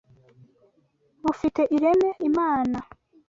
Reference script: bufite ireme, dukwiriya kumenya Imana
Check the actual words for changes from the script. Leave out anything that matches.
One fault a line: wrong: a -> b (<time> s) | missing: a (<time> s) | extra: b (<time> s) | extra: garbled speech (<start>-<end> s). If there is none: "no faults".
missing: dukwiriya kumenya (2.1 s)